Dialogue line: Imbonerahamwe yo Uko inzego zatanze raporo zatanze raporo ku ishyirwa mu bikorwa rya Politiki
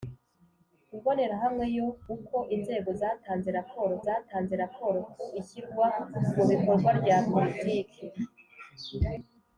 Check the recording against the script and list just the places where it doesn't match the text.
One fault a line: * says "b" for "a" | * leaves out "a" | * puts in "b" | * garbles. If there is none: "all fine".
all fine